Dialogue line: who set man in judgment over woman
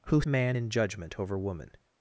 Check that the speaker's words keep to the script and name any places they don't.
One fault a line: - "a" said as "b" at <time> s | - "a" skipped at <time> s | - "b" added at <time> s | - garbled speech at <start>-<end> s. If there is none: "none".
- "set" skipped at 0.2 s